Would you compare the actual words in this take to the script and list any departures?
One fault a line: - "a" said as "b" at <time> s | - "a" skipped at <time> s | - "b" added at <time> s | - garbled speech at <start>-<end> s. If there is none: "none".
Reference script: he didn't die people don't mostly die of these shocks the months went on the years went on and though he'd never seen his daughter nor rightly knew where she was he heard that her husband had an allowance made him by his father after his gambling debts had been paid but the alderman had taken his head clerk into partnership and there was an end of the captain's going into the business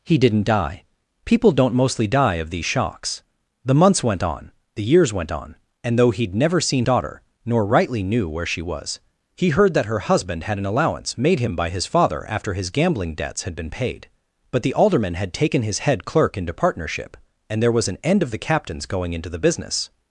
- "his" skipped at 6.8 s